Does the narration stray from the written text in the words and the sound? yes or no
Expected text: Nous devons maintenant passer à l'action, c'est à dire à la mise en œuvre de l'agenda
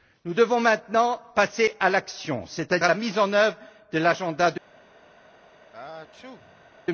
yes